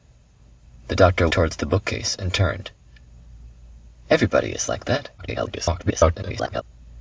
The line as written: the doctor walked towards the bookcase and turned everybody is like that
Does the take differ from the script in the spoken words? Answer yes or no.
yes